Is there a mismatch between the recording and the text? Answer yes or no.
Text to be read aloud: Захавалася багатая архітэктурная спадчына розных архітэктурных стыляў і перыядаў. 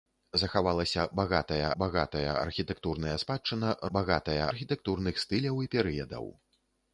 yes